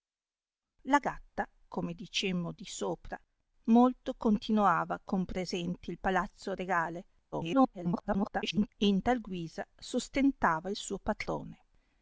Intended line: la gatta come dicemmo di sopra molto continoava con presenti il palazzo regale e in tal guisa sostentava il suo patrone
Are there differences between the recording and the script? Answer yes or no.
yes